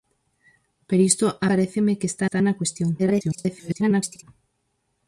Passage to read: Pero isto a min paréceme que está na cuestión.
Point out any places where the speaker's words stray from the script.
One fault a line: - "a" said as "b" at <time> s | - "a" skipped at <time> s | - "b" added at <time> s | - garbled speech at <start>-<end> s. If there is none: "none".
- "min" skipped at 1.5 s
- "está" added at 2.2 s
- garbled speech at 3.0-4.2 s